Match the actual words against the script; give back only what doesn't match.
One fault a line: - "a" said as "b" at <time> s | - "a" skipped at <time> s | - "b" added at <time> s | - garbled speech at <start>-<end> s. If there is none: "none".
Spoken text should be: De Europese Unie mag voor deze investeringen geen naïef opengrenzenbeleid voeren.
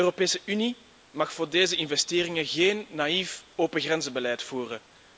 none